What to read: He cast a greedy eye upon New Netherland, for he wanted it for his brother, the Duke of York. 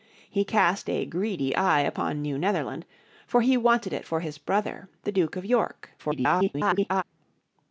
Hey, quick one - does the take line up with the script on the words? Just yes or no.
no